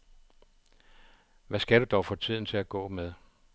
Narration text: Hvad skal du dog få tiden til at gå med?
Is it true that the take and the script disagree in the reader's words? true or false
false